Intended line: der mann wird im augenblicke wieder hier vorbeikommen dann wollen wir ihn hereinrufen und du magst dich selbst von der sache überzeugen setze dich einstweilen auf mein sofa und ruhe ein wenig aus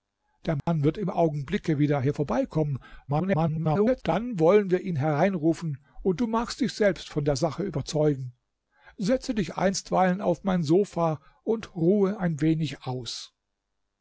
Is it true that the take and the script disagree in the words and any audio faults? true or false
true